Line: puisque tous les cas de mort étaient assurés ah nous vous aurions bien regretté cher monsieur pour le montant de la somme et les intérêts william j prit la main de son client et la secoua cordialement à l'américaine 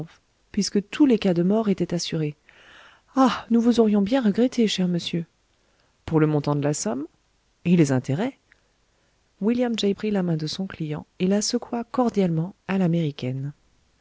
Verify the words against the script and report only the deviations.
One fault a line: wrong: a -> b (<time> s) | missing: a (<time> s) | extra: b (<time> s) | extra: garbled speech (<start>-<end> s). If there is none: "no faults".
no faults